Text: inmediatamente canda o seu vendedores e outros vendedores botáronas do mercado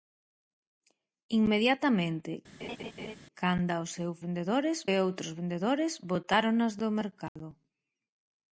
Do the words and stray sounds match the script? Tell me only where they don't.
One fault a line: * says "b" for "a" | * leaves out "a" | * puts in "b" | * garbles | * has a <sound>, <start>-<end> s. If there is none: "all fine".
* has a laugh, 2.6-3.2 s
* has a dropout, 7.3-7.4 s